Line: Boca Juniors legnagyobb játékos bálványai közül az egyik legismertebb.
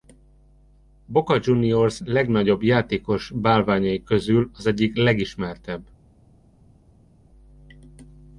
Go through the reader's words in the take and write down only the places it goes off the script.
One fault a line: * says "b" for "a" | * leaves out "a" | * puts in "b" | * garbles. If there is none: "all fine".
all fine